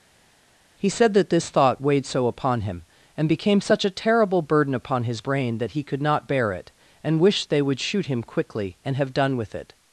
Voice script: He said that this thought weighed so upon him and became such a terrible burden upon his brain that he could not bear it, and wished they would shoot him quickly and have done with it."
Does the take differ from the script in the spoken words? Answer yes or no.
no